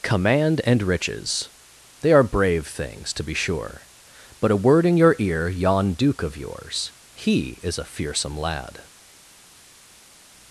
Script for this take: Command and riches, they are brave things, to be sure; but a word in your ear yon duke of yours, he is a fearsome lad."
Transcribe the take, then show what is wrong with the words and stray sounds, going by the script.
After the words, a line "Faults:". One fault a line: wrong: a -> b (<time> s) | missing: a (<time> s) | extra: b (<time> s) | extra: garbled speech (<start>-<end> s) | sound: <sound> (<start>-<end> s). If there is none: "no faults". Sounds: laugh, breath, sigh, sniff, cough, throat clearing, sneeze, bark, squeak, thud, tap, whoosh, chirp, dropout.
Command and riches, they are brave things, to be sure; but a word in your ear yon duke of yours, he is a fearsome lad."
Faults:
no faults